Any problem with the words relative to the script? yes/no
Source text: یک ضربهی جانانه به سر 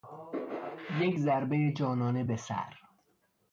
no